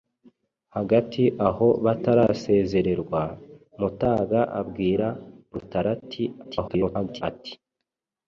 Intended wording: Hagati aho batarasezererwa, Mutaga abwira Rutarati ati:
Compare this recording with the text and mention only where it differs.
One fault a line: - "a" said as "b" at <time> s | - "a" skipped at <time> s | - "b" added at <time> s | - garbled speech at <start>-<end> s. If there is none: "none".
- garbled speech at 6.4-7.2 s